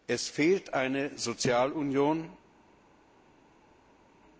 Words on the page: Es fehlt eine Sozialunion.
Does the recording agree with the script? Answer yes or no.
yes